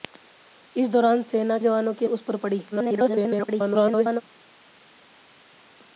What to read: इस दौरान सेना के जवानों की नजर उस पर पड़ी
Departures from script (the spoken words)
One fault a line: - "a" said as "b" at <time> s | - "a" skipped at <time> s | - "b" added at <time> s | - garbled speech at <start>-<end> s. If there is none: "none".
- "के" skipped at 1.6 s
- "नजर" skipped at 2.1 s
- garbled speech at 2.7-4.2 s